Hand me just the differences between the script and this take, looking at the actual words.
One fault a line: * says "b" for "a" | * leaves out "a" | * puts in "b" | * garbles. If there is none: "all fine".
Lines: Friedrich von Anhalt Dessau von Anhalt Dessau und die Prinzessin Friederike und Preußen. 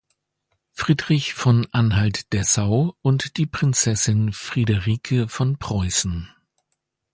* leaves out "von Anhalt Dessau"
* says "von" for "und"